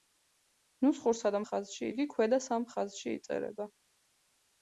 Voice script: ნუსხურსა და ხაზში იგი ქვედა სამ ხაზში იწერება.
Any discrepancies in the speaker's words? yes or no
no